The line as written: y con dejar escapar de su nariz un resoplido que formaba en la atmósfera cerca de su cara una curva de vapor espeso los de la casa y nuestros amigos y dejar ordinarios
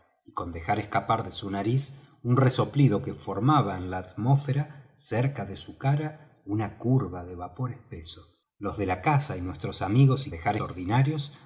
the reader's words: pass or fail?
pass